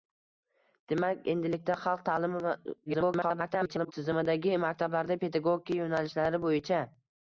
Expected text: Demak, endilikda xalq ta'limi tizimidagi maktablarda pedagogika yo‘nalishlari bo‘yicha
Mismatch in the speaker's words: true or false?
true